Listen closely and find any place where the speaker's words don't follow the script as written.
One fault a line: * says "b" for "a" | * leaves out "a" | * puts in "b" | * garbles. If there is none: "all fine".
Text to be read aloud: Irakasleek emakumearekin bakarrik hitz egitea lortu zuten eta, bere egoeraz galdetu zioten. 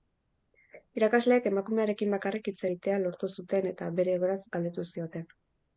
all fine